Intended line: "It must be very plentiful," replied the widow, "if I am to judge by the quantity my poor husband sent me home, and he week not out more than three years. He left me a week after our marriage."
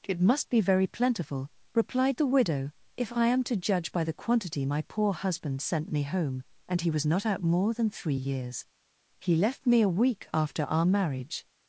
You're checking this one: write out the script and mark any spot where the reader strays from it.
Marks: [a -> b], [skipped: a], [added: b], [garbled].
"It must be very plentiful," replied the widow, "if I am to judge by the quantity my poor husband sent me home, and he [week -> was] not out more than three years. He left me a week after our marriage."